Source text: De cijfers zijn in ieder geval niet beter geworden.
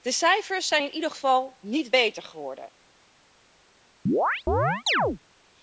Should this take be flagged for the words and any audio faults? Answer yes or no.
yes